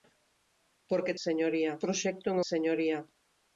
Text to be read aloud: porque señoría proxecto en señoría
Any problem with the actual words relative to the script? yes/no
no